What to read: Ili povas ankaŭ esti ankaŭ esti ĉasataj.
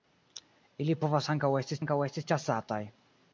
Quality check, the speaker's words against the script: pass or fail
pass